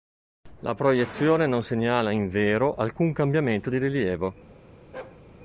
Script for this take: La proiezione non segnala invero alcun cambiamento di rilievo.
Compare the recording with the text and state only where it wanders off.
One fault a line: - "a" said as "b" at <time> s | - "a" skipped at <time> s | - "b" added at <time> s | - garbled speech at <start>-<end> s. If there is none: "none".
none